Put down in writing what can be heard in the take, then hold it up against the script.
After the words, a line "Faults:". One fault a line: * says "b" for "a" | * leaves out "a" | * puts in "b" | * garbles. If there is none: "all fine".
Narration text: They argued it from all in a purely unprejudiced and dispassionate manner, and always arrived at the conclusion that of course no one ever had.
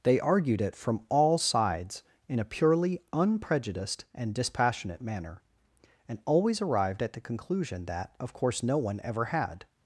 They argued it from all sides, in a purely unprejudiced and dispassionate manner, and always arrived at the conclusion that of course no one ever had.
Faults:
* puts in "sides"